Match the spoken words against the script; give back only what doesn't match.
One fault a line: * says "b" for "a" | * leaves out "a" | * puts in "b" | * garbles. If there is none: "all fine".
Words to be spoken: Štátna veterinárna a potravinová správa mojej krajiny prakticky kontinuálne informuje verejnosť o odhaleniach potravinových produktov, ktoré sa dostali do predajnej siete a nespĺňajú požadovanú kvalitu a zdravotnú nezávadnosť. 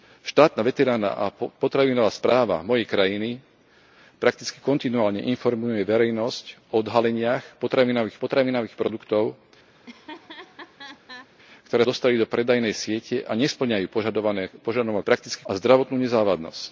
* puts in "potravinových"
* leaves out "sa"
* says "prakticky" for "kvalitu"